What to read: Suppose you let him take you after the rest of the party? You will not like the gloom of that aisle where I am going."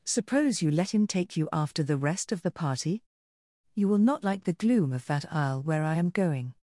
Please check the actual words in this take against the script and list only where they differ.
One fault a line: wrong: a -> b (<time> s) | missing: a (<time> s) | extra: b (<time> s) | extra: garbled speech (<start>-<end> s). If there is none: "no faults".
no faults